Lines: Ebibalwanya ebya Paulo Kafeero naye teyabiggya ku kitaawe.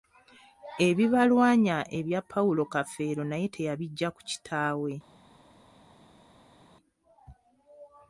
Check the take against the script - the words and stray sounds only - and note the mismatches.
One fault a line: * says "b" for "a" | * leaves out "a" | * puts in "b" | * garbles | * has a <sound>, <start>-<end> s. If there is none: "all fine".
all fine